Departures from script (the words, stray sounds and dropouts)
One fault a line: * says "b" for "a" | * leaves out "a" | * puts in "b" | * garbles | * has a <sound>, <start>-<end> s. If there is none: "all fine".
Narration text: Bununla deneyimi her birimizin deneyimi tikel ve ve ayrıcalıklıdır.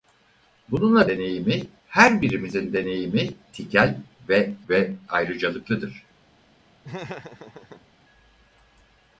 * has a laugh, 6.8-7.9 s